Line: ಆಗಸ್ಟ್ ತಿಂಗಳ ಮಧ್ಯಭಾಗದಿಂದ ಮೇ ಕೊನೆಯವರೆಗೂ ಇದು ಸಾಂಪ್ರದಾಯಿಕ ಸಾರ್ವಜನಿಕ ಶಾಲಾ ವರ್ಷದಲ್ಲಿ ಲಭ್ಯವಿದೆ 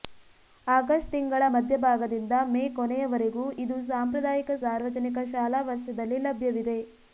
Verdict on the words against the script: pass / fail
pass